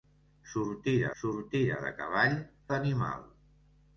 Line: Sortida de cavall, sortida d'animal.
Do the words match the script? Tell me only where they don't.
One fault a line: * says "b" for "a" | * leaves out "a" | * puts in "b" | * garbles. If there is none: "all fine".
* puts in "sortida"
* leaves out "sortida"